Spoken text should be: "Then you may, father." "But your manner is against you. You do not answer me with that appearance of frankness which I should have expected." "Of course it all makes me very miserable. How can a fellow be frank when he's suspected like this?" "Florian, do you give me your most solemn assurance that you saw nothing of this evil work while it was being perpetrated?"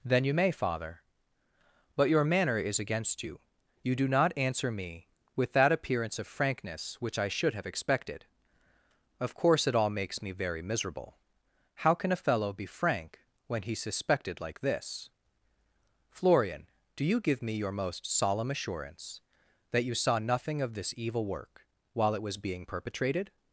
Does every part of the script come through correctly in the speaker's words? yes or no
yes